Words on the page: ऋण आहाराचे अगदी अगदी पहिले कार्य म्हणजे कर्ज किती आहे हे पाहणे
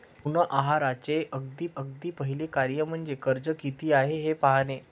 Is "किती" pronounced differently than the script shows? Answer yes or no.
no